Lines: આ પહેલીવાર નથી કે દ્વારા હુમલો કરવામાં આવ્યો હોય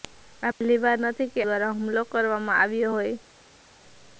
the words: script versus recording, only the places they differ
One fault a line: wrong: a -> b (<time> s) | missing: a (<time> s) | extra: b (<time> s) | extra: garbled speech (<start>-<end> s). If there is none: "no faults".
no faults